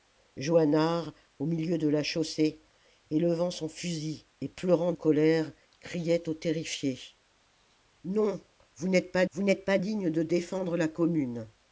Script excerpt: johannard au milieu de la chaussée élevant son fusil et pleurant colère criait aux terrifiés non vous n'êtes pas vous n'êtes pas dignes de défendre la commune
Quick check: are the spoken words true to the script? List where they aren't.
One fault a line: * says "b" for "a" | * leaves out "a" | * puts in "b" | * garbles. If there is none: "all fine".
all fine